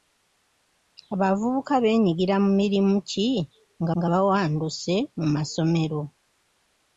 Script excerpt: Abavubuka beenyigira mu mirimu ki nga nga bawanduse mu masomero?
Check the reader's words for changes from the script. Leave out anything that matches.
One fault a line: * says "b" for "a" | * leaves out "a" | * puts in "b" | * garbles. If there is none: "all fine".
all fine